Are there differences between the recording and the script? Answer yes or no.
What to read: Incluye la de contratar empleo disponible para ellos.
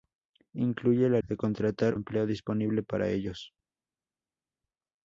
no